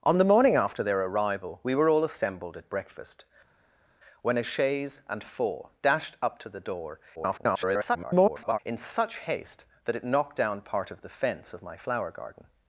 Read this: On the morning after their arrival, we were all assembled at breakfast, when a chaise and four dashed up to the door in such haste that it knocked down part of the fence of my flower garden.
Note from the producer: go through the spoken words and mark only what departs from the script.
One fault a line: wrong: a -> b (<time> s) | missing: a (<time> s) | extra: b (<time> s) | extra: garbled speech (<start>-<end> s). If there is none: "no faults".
extra: garbled speech (7.2-8.6 s)